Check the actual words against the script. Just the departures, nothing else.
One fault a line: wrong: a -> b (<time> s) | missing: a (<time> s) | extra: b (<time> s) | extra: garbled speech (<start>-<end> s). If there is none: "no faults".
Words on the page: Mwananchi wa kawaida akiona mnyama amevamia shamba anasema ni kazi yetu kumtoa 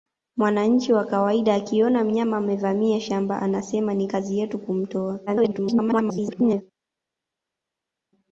extra: garbled speech (5.3-6.6 s)